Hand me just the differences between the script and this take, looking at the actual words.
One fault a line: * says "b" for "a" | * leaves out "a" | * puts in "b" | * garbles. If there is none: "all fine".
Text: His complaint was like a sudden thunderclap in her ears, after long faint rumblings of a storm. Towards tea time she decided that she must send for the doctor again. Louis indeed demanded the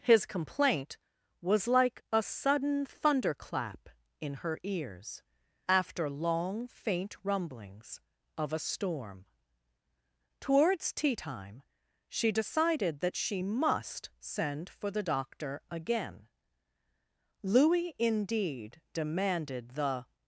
all fine